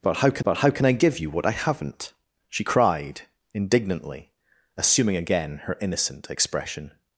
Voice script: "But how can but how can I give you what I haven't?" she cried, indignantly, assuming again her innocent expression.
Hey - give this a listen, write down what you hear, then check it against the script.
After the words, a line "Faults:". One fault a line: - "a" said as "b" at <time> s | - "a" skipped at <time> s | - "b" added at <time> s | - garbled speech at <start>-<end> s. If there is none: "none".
"But how can but how can I give you what I haven't?" she cried, indignantly, assuming again her innocent expression.
Faults:
none